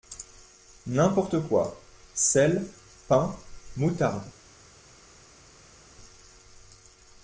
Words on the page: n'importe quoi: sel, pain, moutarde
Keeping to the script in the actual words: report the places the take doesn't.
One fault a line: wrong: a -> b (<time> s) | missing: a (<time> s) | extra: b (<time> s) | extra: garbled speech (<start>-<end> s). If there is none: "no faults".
no faults